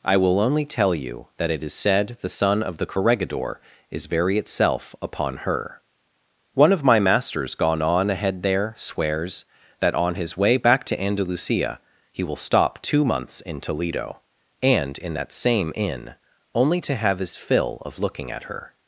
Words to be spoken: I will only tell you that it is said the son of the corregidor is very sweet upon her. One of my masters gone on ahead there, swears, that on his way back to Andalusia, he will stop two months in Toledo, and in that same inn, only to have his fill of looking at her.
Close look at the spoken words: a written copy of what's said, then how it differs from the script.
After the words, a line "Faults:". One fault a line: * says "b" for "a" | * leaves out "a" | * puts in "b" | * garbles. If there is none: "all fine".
I will only tell you that it is said the son of the corregidor is very itself upon her. One of my masters gone on ahead there, swears, that on his way back to Andalusia, he will stop two months in Toledo, and in that same inn, only to have his fill of looking at her.
Faults:
* says "itself" for "sweet"